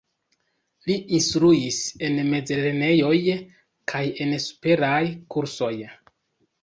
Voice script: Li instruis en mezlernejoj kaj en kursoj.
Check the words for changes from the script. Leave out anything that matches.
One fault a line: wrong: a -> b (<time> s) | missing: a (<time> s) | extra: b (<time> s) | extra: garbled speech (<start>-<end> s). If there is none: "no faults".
extra: superaj (4.5 s)